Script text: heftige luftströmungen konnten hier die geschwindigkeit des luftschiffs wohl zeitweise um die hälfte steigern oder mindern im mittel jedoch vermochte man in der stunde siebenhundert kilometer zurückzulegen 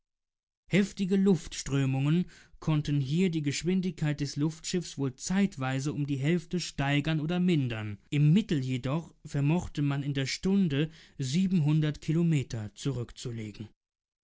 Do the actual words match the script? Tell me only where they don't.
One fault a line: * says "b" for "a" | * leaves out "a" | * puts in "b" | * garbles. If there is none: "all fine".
all fine